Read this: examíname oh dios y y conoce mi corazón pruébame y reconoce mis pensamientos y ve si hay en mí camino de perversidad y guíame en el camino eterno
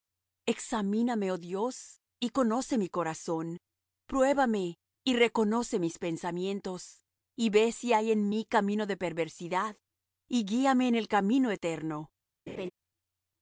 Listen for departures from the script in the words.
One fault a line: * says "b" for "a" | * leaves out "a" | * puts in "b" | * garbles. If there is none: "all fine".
* leaves out "y"